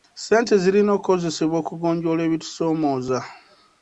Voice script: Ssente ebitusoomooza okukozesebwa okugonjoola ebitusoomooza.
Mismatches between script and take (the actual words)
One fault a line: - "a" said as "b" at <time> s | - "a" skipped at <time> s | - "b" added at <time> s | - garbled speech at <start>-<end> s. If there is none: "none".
- "ebitusoomooza" said as "zirina" at 0.6 s